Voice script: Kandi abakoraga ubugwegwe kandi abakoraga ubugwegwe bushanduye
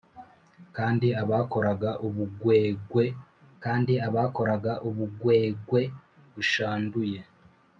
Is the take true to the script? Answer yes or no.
yes